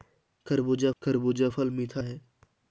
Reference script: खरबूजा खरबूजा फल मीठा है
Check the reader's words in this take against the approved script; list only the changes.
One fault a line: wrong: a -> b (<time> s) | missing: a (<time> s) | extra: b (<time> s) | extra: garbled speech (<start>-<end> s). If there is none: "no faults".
no faults